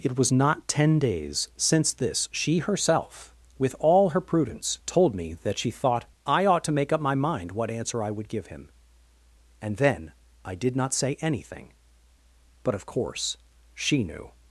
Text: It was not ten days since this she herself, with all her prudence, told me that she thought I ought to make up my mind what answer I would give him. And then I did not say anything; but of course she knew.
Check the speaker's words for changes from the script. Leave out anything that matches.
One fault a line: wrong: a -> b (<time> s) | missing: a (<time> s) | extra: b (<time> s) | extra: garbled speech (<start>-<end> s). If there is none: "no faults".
no faults